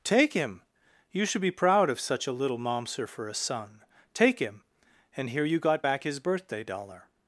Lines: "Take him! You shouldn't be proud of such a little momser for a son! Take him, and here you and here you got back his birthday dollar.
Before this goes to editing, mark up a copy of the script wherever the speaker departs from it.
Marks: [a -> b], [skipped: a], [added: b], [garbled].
"Take him! You [shouldn't -> should] be proud of such a little momser for a son! Take him, and here you [skipped: and here you] got back his birthday dollar.